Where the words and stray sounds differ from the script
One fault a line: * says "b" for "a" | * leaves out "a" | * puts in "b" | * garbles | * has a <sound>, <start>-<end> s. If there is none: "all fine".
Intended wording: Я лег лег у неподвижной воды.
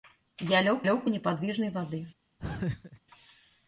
* has a laugh, 2.4-3.0 s